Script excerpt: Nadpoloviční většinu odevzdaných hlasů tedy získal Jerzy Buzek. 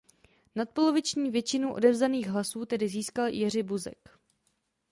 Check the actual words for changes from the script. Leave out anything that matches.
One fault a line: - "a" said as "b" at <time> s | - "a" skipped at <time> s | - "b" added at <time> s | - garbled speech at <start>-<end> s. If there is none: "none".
none